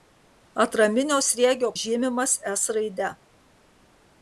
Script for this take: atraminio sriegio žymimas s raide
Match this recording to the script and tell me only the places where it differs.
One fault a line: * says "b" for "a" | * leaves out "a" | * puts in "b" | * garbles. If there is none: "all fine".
all fine